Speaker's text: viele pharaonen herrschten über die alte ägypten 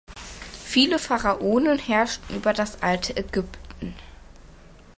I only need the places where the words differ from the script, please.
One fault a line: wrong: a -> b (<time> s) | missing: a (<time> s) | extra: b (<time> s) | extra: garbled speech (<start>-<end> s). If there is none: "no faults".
wrong: die -> das (2.5 s)